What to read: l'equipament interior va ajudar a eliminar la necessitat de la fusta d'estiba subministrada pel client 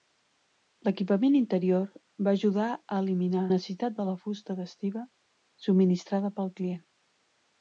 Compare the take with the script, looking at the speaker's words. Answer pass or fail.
fail